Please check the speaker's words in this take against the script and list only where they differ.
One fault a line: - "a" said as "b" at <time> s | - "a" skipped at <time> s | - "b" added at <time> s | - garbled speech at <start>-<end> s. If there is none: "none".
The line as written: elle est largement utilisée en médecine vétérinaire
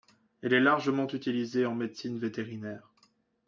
none